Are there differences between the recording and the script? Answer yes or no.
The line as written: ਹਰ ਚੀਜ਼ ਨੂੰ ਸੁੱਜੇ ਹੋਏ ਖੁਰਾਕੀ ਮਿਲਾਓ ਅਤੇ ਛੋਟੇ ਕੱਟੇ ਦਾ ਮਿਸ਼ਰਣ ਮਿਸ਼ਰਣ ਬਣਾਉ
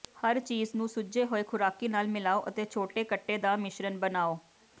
yes